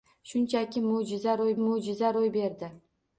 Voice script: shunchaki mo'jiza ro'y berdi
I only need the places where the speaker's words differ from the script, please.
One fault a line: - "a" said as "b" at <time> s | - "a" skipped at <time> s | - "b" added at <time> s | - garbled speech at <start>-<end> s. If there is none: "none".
- "mo'jiza ro'y" added at 1.6 s